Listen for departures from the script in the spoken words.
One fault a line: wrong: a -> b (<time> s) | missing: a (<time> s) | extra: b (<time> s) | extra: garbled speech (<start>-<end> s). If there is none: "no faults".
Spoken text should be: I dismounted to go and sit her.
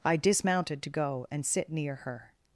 extra: near (1.7 s)